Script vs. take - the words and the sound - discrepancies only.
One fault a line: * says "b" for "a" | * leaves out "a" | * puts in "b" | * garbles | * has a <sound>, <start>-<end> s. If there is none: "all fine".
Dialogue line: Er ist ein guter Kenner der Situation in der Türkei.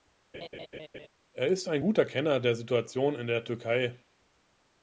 * has a laugh, 0.3-1.1 s